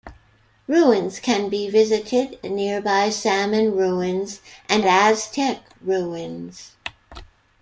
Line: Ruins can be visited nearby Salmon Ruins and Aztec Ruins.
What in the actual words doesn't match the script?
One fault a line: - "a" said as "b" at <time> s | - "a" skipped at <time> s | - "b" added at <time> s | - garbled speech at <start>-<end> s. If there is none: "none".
none